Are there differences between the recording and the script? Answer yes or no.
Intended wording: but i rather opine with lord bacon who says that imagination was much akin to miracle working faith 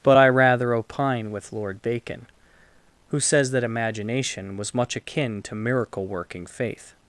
no